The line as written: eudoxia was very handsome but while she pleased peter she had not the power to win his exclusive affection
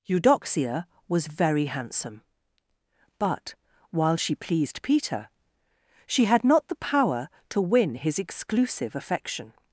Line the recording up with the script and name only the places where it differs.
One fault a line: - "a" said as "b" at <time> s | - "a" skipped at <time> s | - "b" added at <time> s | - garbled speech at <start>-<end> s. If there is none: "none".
none